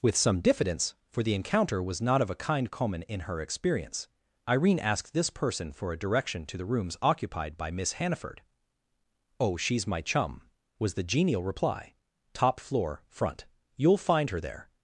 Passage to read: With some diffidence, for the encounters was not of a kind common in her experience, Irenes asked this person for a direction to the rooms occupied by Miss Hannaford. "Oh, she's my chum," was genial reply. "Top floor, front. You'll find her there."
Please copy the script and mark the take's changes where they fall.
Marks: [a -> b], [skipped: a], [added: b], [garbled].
With some diffidence, for the [encounters -> encounter] was not of a kind common in her experience, [Irenes -> Irene] asked this person for a direction to the rooms occupied by Miss Hannaford. "Oh, she's my chum," was [added: the] genial reply. "Top floor, front. You'll find her there."